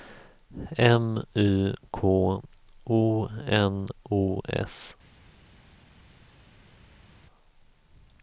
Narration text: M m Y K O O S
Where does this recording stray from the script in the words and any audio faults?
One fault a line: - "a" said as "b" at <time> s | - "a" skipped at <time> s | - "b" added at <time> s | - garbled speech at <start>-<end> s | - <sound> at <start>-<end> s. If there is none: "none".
- "m" skipped at 1.2 s
- "N" added at 3.5 s